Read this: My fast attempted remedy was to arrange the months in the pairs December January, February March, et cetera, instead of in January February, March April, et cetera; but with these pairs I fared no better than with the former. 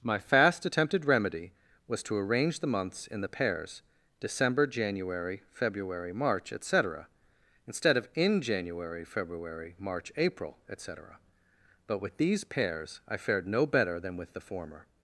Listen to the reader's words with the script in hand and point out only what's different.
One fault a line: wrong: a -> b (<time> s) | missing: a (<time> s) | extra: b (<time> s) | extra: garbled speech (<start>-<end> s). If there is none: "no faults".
no faults